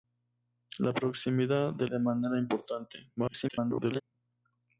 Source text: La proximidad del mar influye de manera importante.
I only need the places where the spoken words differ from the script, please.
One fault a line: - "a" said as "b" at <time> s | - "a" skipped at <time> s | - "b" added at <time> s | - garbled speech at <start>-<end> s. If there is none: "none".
- "mar influye" skipped at 1.9 s
- garbled speech at 3.2-4.0 s